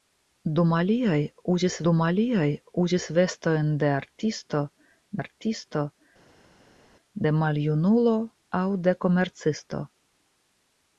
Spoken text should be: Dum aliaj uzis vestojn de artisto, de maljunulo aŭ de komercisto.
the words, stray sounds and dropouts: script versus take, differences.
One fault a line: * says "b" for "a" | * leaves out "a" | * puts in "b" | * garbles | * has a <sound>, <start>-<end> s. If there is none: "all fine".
* puts in "dum aliaj uzis"
* puts in "artisto"